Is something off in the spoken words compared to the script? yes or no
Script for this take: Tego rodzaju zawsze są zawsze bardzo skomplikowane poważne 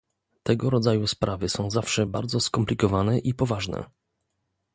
yes